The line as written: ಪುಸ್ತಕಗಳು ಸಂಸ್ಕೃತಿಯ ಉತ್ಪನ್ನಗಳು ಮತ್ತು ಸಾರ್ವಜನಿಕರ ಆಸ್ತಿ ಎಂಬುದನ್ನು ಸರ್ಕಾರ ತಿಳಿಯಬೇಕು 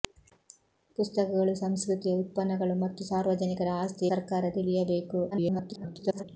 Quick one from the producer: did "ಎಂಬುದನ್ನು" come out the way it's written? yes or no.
no